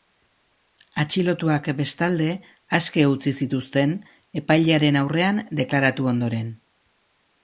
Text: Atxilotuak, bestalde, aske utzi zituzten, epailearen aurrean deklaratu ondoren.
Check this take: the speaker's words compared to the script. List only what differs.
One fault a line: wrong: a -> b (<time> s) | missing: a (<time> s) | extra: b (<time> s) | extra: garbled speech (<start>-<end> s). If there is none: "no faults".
no faults